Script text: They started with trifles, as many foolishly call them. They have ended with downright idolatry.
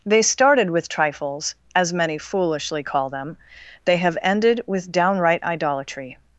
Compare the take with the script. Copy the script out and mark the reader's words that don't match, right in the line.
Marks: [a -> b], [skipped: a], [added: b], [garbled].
They started with trifles, as many foolishly call them. They have ended with downright idolatry.